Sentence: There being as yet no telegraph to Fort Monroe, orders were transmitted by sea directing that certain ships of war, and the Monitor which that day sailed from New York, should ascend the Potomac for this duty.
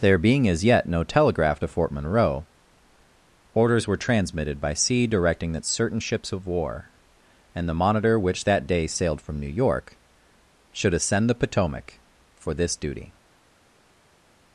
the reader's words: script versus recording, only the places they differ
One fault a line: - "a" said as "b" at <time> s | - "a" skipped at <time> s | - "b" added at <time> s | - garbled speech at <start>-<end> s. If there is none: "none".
none